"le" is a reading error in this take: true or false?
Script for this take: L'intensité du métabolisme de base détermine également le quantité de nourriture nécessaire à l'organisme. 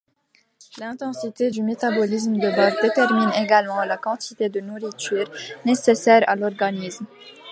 true